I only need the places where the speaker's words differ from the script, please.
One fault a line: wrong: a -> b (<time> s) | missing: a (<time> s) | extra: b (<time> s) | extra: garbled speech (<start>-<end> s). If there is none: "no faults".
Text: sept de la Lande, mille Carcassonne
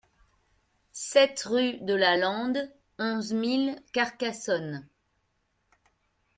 extra: rue (1.4 s)
extra: onze (3.0 s)